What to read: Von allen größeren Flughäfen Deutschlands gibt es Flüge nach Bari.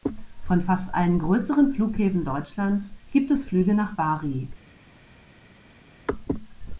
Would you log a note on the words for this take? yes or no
yes